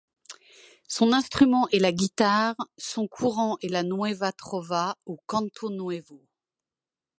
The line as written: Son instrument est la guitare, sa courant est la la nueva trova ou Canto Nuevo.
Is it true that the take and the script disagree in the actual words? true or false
true